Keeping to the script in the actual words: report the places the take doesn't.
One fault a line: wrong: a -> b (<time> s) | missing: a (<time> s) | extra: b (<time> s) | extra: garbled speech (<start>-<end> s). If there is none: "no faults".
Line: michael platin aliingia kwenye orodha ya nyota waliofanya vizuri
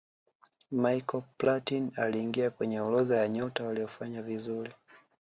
no faults